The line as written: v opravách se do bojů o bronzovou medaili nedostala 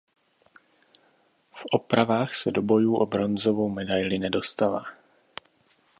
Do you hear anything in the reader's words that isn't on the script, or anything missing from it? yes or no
no